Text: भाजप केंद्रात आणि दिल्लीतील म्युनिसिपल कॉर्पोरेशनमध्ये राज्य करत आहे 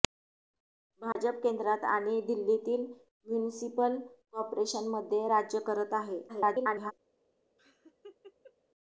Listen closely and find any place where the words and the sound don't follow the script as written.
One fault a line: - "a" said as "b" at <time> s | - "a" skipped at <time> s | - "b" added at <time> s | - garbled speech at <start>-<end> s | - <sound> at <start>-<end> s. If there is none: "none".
- dropout at 1.1-1.2 s
- garbled speech at 6.3-6.9 s
- laugh at 7.6-8.5 s